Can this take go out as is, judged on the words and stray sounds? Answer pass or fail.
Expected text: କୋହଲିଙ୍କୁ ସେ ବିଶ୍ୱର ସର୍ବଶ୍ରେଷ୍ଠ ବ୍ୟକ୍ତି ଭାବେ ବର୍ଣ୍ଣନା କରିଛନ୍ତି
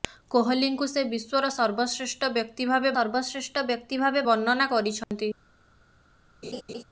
fail